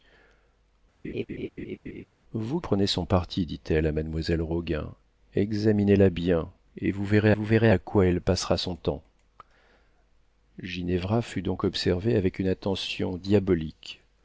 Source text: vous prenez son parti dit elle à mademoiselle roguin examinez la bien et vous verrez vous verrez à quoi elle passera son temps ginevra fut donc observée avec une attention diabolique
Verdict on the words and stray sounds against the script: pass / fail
fail